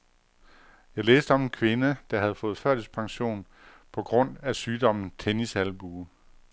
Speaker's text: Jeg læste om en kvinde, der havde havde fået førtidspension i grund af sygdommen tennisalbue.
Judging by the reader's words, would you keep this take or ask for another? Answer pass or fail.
fail